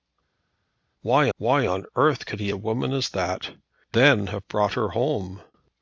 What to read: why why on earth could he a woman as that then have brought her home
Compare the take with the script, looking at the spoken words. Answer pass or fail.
pass